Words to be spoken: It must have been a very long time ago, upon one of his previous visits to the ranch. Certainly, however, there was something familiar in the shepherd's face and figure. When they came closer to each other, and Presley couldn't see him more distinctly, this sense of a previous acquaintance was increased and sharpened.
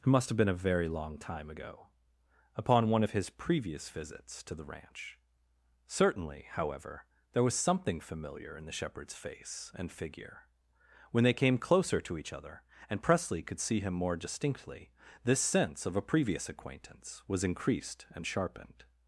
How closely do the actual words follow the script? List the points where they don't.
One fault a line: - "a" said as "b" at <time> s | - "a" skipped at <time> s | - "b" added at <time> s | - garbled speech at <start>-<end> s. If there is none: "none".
- "couldn't" said as "could" at 13.4 s